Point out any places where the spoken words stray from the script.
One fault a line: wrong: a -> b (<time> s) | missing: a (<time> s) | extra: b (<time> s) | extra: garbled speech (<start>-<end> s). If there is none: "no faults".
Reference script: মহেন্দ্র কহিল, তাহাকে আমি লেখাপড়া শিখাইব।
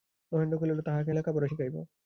missing: আমি (1.1 s)